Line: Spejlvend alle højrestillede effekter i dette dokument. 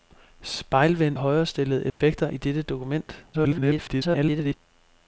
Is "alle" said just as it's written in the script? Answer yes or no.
no